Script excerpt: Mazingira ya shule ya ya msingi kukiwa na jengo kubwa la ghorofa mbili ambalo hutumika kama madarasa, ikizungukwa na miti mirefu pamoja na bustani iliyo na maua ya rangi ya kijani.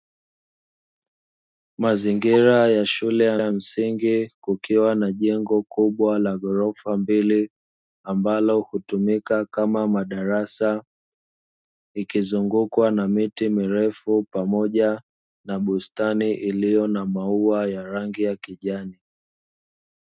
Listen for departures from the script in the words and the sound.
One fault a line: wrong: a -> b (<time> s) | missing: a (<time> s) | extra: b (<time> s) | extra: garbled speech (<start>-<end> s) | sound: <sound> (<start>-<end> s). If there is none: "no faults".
no faults